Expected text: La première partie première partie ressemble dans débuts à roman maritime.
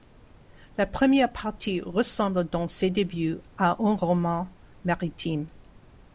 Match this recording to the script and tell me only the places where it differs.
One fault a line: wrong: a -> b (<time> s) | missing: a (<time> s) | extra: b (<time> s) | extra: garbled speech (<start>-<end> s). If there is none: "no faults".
missing: première partie (1.8 s)
extra: ses (2.7 s)
extra: un (3.8 s)